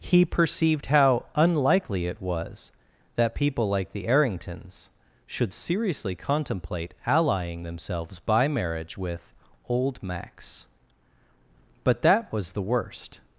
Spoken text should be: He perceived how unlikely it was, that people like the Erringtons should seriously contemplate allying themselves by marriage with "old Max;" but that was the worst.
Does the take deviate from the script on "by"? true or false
false